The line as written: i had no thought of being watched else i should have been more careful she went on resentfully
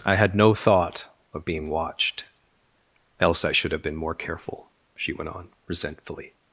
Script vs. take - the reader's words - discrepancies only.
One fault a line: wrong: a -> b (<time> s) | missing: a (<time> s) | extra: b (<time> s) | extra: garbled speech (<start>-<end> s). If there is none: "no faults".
no faults